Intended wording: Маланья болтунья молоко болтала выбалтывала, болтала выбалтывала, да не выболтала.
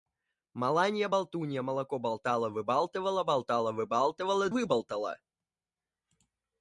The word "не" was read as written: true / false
false